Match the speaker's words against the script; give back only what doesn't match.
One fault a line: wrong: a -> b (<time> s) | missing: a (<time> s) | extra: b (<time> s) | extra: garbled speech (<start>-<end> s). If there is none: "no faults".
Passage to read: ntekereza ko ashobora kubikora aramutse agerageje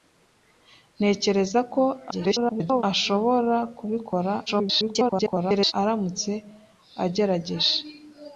extra: garbled speech (2.1-2.8 s)
extra: garbled speech (4.5-5.7 s)